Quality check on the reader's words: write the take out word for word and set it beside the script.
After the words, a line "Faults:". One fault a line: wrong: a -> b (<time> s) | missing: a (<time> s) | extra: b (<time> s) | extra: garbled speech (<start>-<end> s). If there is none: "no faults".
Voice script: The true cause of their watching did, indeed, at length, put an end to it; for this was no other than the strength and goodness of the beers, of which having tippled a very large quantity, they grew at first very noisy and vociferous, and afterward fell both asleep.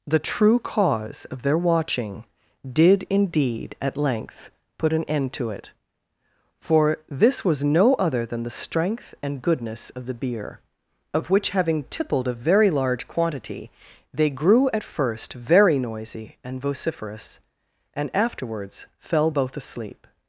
The true cause of their watching did, indeed, at length, put an end to it; for this was no other than the strength and goodness of the beer, of which having tippled a very large quantity, they grew at first very noisy and vociferous, and afterwards fell both asleep.
Faults:
wrong: beers -> beer (10.2 s)
wrong: afterward -> afterwards (18.1 s)